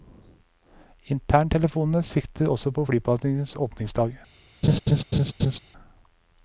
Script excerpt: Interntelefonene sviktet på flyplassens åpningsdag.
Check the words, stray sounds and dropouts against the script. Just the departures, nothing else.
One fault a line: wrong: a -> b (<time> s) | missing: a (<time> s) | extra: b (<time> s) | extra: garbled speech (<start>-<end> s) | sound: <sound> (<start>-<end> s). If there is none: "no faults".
extra: også (2.5 s)
sound: laugh (4.6-5.6 s)